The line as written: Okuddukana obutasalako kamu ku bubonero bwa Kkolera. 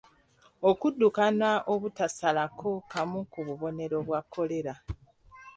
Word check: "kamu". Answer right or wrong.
right